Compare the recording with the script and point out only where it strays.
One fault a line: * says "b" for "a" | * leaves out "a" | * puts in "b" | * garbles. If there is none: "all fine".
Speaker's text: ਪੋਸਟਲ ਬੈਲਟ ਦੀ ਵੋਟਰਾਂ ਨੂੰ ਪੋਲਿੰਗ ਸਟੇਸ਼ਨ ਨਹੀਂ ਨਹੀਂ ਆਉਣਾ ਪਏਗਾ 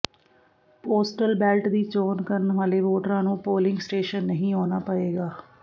* puts in "ਚੋਣ ਕਰਨ ਵਾਲੇ"
* leaves out "ਨਹੀਂ"